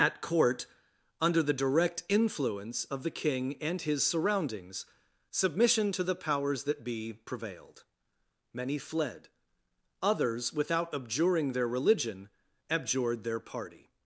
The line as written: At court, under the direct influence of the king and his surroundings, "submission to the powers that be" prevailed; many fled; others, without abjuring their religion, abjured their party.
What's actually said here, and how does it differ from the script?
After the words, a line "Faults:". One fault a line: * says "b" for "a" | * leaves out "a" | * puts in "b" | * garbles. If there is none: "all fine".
At court, under the direct influence of the king and his surroundings, "submission to the powers that be" prevailed; many fled; others, without abjuring their religion, abjured their party.
Faults:
all fine